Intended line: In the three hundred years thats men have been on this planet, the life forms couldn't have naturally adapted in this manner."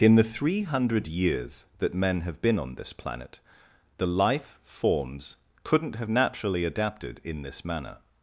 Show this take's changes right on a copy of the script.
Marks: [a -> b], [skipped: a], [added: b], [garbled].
In the three hundred years [thats -> that] men have been on this planet, the life forms couldn't have naturally adapted in this manner."